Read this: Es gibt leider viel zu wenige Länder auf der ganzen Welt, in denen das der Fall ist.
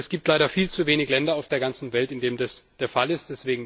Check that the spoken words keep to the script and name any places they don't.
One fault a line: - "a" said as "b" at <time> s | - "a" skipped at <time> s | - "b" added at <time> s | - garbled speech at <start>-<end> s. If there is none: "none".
none